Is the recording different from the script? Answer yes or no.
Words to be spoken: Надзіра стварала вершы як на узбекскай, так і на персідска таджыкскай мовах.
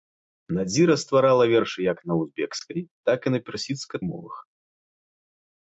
yes